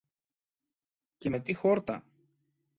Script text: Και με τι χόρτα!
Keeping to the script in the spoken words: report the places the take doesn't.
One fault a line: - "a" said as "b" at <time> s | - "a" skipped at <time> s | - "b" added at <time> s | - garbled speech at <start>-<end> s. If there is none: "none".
none